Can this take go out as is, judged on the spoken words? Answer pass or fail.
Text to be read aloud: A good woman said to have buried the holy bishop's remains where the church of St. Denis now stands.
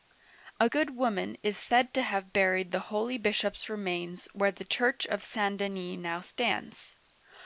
fail